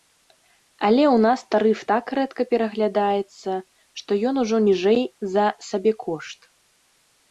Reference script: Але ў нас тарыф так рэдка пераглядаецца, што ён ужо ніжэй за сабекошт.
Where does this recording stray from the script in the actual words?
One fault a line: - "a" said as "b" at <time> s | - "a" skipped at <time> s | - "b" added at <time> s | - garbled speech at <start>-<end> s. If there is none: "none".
none